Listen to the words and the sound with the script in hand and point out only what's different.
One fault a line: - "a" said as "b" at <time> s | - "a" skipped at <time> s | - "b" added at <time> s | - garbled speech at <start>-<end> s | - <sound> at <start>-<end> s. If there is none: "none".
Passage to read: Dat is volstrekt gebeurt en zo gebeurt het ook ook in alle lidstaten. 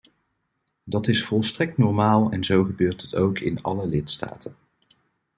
- "gebeurt" said as "normaal" at 1.8 s
- "ook" skipped at 3.4 s